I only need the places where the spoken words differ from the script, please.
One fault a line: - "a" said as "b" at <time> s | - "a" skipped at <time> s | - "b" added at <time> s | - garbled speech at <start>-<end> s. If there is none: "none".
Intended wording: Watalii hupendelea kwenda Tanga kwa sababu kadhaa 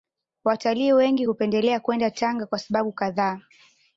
- "wengi" added at 0.9 s